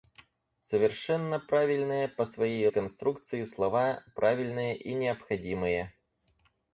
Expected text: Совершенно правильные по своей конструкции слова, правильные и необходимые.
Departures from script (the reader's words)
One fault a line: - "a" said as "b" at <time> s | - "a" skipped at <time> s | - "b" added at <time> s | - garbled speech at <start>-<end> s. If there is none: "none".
none